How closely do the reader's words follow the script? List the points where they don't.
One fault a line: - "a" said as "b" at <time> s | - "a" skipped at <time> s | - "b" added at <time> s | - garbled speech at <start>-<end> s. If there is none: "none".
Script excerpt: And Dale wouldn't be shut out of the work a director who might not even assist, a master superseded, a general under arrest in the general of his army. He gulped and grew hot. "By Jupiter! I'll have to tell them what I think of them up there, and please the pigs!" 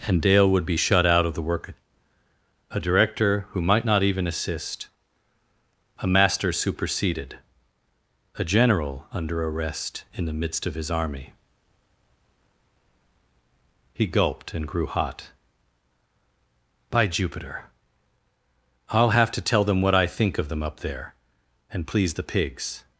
- "wouldn't" said as "would" at 0.5 s
- "general" said as "midst" at 10.3 s